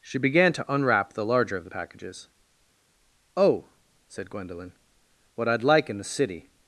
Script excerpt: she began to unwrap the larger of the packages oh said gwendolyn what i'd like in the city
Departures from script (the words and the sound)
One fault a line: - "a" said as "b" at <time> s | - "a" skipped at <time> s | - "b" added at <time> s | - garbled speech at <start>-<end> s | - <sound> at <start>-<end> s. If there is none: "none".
none